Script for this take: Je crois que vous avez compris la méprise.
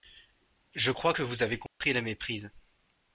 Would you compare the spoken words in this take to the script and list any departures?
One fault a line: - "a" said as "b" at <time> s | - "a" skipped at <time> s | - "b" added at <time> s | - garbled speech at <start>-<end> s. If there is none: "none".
none